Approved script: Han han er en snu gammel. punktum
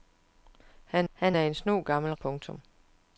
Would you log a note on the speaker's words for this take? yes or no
no